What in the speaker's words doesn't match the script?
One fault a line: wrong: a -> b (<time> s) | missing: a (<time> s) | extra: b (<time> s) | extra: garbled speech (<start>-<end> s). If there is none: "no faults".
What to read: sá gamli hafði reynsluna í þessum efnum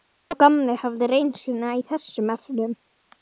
no faults